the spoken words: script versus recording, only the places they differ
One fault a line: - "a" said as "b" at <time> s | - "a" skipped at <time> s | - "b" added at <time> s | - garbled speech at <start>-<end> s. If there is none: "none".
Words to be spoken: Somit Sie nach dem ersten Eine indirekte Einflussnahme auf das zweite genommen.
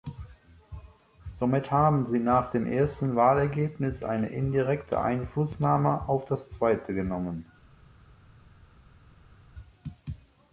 - "haben" added at 1.7 s
- "Wahlergebnis" added at 3.2 s